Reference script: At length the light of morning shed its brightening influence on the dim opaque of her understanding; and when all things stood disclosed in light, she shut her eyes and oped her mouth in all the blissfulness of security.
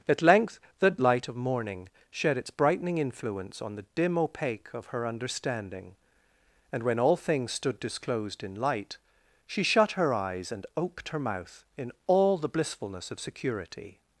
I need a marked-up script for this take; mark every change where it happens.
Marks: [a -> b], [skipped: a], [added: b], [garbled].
At length the light of morning shed its brightening influence on the dim opaque of her understanding; and when all things stood disclosed in light, she shut her eyes and oped her mouth in all the blissfulness of security.